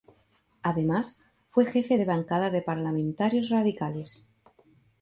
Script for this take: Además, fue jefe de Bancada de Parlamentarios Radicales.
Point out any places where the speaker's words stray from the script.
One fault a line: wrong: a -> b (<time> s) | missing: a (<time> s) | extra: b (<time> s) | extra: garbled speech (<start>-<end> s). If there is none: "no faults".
no faults